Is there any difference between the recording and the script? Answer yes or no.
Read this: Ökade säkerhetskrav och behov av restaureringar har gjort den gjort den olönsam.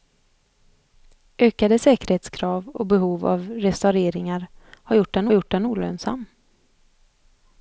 no